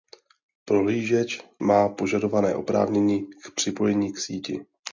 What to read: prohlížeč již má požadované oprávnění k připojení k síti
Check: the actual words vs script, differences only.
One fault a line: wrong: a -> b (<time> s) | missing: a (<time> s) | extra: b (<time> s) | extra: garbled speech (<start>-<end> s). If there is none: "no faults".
missing: již (1.4 s)